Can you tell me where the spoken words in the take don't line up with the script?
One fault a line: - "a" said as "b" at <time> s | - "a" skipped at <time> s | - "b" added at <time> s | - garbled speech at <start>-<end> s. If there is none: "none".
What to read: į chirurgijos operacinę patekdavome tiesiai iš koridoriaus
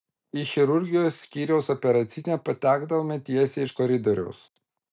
- "skyriaus" added at 1.2 s